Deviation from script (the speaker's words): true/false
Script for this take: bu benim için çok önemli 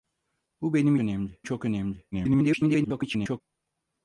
true